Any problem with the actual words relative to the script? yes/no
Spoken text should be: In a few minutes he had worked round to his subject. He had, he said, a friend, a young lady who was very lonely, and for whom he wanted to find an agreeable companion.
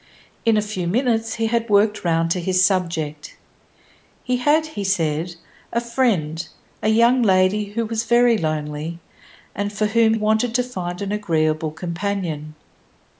yes